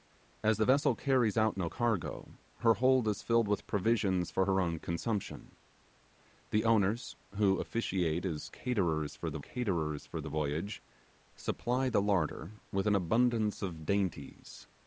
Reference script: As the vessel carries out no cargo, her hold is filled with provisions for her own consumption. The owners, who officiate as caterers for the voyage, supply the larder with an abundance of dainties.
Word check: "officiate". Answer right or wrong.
right